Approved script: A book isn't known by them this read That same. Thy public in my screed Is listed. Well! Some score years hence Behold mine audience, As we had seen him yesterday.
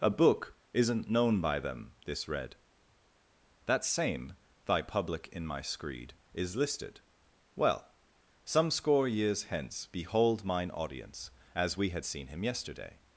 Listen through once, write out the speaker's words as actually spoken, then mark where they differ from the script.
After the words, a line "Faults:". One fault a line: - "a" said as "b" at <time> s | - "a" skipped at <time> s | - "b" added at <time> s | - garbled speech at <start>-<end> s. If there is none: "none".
A book isn't known by them this read That same. Thy public in my screed Is listed. Well! Some score years hence Behold mine audience, As we had seen him yesterday.
Faults:
none